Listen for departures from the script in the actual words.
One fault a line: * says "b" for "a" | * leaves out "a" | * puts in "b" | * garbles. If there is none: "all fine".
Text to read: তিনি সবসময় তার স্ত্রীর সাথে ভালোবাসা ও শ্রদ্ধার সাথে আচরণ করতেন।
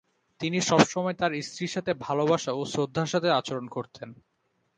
all fine